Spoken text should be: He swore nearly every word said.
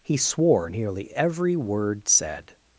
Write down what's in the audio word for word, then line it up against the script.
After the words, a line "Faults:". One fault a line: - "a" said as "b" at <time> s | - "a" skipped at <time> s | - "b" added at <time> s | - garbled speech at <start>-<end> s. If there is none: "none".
He swore nearly every word said.
Faults:
none